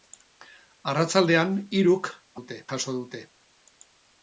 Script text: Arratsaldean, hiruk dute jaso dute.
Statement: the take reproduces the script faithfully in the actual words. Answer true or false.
true